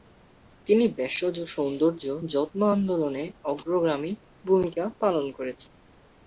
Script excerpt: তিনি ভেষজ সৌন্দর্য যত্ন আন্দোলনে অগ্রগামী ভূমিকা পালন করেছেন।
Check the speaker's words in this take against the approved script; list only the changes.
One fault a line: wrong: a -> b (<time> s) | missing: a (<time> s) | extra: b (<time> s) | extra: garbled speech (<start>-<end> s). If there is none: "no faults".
no faults